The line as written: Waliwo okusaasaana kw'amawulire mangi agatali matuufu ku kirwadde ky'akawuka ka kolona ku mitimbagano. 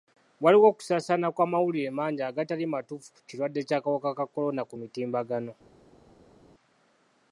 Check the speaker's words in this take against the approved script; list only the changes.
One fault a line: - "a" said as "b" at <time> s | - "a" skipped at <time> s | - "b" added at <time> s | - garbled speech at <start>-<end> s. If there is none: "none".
none